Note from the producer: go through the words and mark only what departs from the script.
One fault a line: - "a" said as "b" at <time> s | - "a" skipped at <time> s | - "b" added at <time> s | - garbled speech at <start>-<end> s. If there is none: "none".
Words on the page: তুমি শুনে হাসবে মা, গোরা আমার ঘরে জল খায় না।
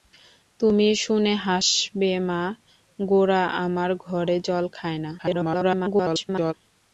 - garbled speech at 5.2-6.5 s